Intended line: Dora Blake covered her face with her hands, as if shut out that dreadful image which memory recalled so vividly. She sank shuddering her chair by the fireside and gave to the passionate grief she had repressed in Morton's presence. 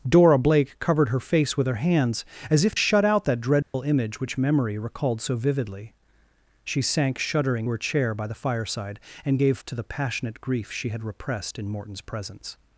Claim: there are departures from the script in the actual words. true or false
false